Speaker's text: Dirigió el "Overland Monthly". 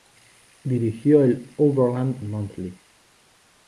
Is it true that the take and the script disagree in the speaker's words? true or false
false